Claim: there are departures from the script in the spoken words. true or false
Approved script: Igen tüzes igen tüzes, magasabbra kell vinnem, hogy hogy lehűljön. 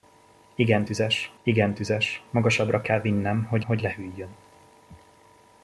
false